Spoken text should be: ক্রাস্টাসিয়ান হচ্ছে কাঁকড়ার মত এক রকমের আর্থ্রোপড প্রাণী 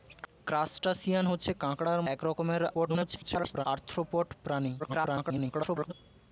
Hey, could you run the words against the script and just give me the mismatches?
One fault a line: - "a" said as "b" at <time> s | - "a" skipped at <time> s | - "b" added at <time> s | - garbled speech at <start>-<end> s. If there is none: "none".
- "মত" skipped at 2.0 s
- garbled speech at 2.7-3.7 s
- garbled speech at 4.8-5.9 s